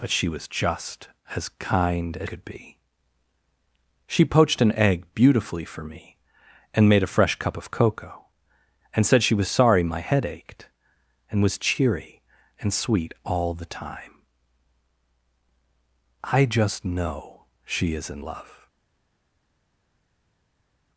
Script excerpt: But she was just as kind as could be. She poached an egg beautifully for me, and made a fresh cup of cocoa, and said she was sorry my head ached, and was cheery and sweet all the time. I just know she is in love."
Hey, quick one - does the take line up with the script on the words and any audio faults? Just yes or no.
yes